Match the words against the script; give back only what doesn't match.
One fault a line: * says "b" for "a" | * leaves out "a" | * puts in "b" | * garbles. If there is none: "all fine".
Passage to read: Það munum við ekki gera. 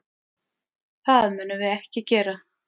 all fine